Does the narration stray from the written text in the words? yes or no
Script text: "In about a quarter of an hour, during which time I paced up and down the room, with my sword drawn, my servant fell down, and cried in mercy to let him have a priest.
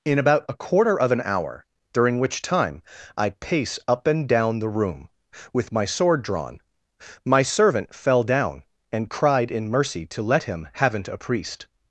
yes